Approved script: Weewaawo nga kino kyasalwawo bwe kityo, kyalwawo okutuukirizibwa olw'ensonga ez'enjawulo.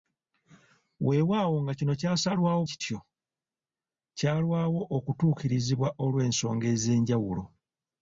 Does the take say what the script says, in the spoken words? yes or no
no